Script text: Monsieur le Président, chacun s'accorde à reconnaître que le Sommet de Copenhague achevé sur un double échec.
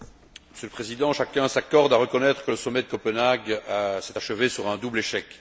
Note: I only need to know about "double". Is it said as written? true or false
true